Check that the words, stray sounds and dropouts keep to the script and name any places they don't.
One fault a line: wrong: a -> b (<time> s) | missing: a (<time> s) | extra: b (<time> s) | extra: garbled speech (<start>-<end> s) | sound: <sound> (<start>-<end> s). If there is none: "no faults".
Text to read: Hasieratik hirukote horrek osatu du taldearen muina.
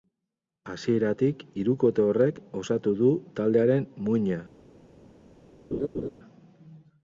sound: laugh (5.7-6.1 s)